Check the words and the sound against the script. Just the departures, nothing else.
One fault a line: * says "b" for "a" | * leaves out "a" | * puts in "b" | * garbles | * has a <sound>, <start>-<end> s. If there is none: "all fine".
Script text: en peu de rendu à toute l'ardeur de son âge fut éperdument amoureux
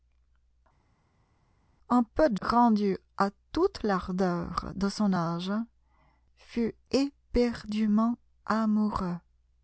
all fine